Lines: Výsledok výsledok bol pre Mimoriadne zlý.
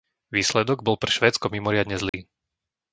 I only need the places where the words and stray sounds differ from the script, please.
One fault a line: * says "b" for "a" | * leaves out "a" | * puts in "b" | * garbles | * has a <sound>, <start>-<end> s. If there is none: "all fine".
* leaves out "výsledok"
* puts in "Švédsko"
* has a dropout, 2.1-2.1 s